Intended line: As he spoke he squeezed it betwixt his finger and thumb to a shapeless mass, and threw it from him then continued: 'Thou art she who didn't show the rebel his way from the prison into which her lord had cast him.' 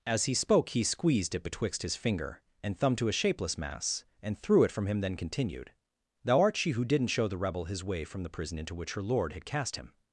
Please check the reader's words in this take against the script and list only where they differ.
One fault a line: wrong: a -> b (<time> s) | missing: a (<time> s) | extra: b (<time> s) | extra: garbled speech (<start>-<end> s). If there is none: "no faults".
no faults